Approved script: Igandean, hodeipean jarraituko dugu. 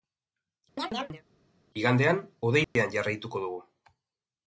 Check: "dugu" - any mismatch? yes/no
no